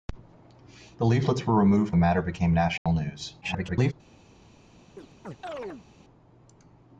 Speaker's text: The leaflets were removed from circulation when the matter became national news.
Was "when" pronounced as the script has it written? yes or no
no